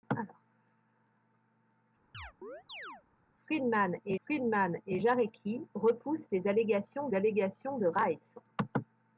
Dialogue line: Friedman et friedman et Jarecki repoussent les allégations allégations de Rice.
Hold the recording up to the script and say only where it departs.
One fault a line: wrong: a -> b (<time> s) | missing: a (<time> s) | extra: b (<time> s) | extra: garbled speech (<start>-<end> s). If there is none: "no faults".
no faults